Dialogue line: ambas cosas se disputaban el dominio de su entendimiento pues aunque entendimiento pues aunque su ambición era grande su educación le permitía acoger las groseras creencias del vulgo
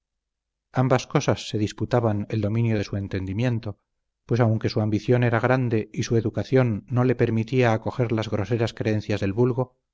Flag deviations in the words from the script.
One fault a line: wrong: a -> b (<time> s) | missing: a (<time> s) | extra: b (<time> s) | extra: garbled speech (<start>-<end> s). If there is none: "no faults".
missing: entendimiento pues aunque (4.7 s)
extra: y (5.9 s)
extra: no (6.9 s)